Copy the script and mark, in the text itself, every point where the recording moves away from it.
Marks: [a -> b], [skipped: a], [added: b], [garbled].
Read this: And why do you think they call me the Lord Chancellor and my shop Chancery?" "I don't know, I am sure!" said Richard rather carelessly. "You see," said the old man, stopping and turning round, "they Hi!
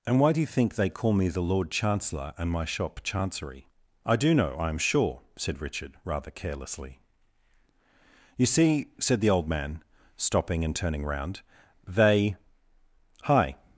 And why do you think they call me the Lord Chancellor and my shop Chancery?" "I [don't -> do] know, I am sure!" said Richard rather carelessly. "You see," said the old man, stopping and turning round, "they Hi!